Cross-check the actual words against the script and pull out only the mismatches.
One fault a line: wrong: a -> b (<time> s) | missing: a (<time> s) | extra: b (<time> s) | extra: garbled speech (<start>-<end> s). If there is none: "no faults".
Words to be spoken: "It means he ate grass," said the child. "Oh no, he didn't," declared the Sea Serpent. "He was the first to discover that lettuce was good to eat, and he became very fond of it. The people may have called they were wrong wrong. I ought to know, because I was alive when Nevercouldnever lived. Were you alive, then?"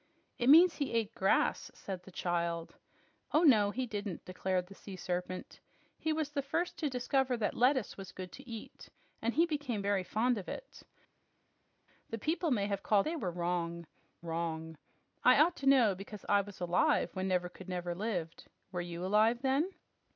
no faults